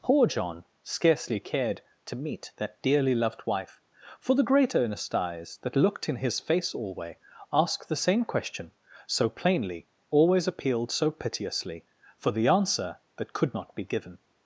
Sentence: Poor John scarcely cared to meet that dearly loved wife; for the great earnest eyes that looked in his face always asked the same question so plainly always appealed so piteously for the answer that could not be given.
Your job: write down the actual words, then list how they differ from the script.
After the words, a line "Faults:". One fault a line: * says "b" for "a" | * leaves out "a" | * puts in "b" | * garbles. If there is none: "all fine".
Poor John scarcely cared to meet that dearly loved wife; for the great earnest eyes that looked in his face alway asked the same question so plainly always appealed so piteously for the answer that could not be given.
Faults:
* says "alway" for "always"